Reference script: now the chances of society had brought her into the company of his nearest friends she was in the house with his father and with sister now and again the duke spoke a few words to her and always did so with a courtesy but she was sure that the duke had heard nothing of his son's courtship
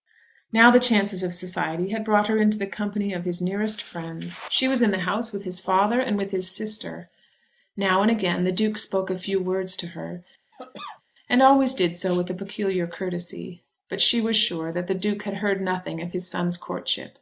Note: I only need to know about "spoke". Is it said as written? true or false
true